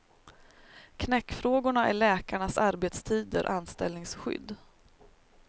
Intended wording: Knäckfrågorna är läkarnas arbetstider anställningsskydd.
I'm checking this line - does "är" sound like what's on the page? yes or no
yes